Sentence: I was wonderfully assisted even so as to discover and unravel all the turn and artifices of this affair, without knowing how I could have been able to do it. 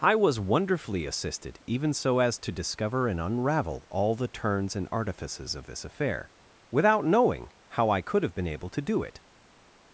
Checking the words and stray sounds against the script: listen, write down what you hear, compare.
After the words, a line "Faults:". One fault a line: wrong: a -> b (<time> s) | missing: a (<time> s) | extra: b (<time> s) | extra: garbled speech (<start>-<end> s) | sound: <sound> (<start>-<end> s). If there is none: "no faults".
I was wonderfully assisted even so as to discover and unravel all the turns and artifices of this affair, without knowing how I could have been able to do it.
Faults:
wrong: turn -> turns (4.3 s)